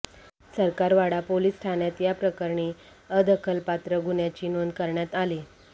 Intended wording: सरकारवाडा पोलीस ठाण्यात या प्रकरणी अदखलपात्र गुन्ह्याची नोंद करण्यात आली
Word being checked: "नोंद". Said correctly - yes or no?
yes